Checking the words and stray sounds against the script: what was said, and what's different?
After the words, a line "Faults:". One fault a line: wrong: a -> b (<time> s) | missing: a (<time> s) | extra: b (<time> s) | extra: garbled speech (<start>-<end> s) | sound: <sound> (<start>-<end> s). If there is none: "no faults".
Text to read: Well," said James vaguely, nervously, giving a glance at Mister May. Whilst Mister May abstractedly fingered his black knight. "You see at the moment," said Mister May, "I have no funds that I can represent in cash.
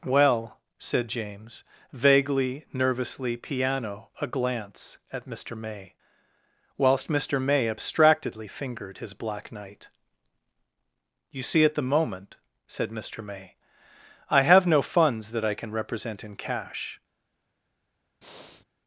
Well," said James vaguely, nervously, piano a glance at Mister May. Whilst Mister May abstractedly fingered his black knight. "You see at the moment," said Mister May, "I have no funds that I can represent in cash.
Faults:
wrong: giving -> piano (3.4 s)
sound: breath (18.2-18.7 s)